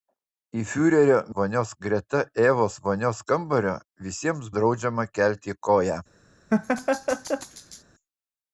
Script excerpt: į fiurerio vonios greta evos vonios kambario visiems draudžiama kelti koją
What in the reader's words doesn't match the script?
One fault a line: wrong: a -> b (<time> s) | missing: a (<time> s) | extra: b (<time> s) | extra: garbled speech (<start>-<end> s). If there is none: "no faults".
no faults